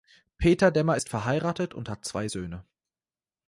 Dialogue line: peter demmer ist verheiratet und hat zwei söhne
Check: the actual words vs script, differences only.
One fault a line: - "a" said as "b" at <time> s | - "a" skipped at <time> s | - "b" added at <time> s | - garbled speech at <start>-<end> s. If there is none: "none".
none